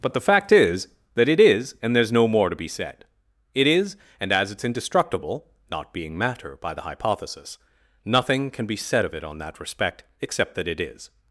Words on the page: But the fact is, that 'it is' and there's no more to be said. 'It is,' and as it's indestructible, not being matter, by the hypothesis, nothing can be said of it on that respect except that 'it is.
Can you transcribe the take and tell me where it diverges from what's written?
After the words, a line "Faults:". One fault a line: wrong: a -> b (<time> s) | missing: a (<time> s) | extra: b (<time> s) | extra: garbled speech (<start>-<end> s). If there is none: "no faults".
But the fact is, that 'it is' and there's no more to be said. 'It is,' and as it's indestructible, not being matter, by the hypothesis, nothing can be said of it on that respect except that 'it is.
Faults:
no faults